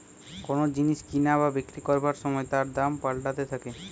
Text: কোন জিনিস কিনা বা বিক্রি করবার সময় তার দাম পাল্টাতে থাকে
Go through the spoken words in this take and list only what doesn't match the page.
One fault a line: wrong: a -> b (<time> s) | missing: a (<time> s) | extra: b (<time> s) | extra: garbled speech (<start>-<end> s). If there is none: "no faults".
no faults